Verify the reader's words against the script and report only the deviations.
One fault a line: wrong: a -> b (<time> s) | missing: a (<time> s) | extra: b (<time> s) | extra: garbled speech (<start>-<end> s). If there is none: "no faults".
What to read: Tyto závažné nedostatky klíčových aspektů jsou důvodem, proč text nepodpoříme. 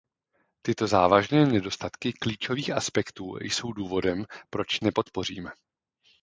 missing: text (4.8 s)